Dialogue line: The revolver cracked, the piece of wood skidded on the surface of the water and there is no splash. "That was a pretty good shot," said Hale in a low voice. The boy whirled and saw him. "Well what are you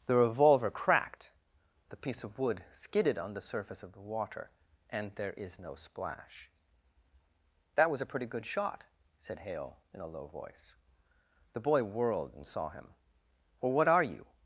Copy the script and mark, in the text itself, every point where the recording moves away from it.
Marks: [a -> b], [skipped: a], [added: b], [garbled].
The revolver cracked, the piece of wood skidded on the surface of the water and there is no splash. "That was a pretty good shot," said Hale in a low voice. The boy whirled and saw him. "Well what are you